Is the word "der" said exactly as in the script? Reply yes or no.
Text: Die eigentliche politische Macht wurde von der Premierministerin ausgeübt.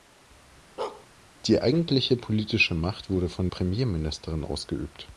no